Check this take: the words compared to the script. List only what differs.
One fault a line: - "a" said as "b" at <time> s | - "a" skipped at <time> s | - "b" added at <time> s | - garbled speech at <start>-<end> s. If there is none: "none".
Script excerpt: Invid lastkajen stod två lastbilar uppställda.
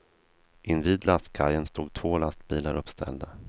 none